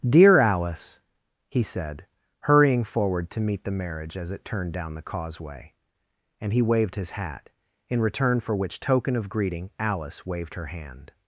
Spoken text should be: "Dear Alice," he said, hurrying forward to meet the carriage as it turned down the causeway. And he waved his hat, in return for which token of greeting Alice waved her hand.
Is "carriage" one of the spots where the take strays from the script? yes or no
yes